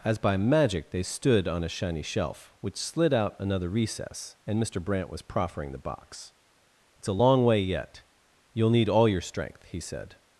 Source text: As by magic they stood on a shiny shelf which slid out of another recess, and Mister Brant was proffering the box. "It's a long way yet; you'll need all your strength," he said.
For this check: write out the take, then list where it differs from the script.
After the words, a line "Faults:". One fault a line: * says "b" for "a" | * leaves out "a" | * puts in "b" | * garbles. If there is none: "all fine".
As by magic they stood on a shiny shelf which slid out another recess, and Mister Brant was proffering the box. "It's a long way yet; you'll need all your strength," he said.
Faults:
* leaves out "of"